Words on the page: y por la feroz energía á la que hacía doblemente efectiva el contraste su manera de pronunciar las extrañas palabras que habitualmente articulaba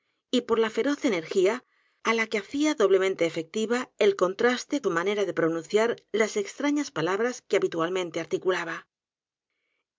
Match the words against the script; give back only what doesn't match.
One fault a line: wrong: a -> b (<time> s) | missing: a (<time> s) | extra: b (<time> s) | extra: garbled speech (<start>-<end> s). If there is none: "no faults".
no faults